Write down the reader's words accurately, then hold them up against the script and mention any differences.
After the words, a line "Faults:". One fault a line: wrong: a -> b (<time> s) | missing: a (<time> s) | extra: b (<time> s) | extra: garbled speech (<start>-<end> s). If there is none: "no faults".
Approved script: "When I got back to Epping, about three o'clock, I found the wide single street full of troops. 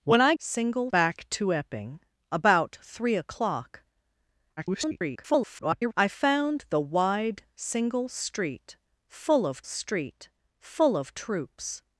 "When I single back to Epping, about three o'clock, [garbled] I found the wide single street full of street full of troops.
Faults:
wrong: got -> single (0.4 s)
extra: garbled speech (4.6-5.9 s)
extra: street full of (9.6 s)